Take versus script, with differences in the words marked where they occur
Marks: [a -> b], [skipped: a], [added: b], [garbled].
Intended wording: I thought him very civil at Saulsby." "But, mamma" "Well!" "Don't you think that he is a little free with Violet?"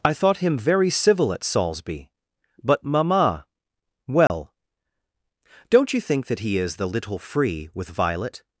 I thought him very civil at Saulsby." "But, mamma" "Well!" "Don't you think that he is [a -> the] little free with Violet?"